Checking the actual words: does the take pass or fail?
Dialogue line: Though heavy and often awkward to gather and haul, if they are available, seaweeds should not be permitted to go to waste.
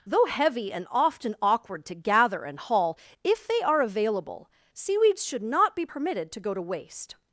pass